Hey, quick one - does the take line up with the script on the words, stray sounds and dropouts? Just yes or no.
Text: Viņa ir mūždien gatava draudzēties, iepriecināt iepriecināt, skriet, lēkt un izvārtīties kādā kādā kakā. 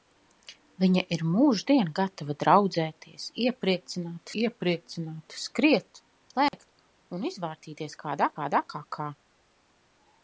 no